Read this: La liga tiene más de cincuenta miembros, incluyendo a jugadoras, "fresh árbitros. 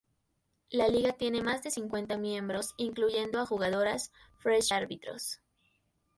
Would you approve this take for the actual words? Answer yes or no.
yes